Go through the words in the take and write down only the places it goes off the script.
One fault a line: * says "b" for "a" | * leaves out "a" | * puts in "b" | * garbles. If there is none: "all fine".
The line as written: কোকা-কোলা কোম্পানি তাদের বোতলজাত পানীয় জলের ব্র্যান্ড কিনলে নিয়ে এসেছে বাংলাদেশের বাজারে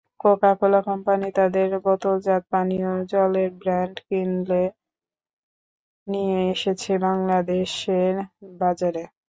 all fine